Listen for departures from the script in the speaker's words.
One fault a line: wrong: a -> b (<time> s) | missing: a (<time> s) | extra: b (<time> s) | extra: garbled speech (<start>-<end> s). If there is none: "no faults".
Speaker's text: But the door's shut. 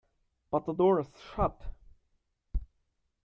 no faults